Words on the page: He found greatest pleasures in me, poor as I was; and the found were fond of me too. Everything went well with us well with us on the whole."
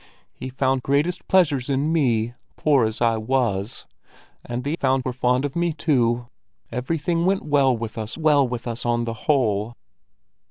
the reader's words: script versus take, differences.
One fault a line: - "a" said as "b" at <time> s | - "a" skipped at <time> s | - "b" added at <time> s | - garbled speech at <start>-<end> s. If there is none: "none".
none